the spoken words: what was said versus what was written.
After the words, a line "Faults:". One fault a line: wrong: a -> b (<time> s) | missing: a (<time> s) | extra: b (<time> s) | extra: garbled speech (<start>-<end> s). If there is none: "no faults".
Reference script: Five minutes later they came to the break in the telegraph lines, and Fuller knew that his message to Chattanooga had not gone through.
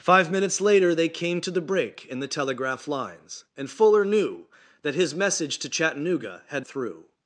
Five minutes later they came to the break in the telegraph lines, and Fuller knew that his message to Chattanooga had through.
Faults:
missing: not gone (6.7 s)